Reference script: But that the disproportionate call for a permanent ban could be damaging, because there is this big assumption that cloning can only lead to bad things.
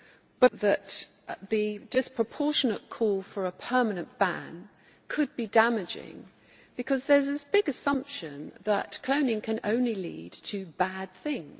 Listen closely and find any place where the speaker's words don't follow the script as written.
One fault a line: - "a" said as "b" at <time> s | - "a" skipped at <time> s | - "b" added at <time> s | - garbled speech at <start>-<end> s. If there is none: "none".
none